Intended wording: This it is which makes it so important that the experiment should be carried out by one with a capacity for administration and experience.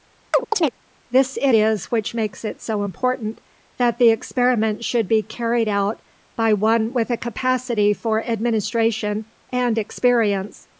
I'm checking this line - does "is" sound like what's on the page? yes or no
yes